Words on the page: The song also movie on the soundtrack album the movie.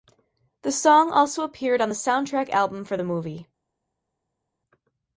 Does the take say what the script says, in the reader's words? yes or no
no